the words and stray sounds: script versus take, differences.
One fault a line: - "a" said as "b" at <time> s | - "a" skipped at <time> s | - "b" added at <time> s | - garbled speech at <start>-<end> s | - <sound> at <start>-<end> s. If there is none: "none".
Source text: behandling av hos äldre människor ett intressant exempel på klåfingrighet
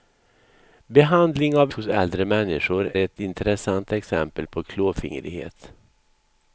none